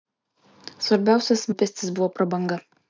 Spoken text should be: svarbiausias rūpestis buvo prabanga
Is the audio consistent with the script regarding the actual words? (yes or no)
yes